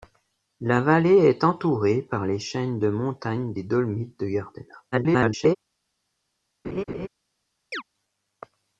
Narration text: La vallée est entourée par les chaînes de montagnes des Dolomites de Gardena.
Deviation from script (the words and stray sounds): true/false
true